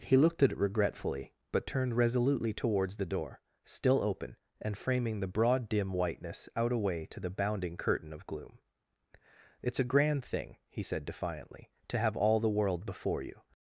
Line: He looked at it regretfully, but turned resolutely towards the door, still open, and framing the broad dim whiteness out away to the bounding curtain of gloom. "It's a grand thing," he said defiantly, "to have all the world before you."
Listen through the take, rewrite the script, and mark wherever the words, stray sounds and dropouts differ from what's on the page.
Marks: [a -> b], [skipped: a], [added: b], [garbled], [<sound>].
He looked at it regretfully, but turned resolutely towards the door, still open, and framing the broad dim whiteness out away to the bounding curtain of gloom. "It's a grand thing," he said defiantly, "to have all the world before you."